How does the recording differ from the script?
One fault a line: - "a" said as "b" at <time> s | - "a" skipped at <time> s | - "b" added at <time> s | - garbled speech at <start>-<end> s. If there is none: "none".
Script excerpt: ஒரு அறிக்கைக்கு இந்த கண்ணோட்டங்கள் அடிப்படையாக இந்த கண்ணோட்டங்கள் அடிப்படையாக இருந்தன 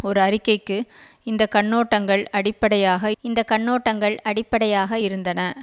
none